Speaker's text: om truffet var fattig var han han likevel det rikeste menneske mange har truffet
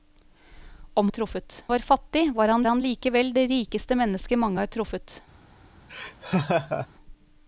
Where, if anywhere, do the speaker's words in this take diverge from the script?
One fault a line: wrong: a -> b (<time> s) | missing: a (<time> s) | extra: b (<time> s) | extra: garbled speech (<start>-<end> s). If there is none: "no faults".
no faults